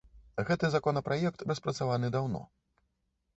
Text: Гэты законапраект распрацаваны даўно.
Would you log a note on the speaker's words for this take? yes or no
no